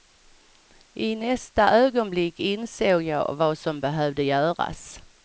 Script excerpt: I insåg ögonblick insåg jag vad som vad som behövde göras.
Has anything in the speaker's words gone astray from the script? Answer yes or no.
yes